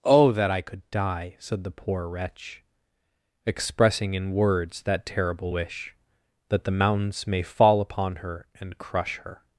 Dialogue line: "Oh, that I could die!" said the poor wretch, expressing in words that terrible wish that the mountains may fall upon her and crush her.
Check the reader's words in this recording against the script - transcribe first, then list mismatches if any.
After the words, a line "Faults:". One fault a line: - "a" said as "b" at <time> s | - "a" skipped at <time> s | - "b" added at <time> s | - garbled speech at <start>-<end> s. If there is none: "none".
"Oh, that I could die!" said the poor wretch, expressing in words that terrible wish that the mountains may fall upon her and crush her.
Faults:
none